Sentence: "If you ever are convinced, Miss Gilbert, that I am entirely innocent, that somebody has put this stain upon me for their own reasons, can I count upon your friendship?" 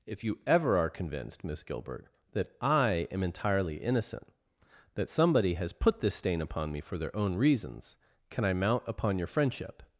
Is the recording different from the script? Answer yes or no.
yes